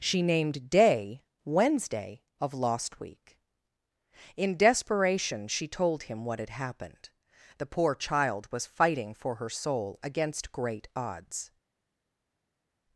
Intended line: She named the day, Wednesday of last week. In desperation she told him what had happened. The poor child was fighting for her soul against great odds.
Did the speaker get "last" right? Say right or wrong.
wrong